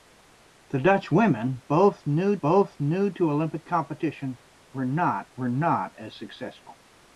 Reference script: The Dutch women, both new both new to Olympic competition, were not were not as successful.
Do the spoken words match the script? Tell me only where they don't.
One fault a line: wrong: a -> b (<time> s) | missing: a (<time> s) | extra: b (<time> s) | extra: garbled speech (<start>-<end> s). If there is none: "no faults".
no faults